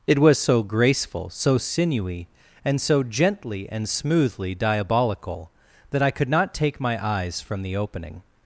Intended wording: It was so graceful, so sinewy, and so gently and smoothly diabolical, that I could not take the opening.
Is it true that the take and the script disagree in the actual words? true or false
true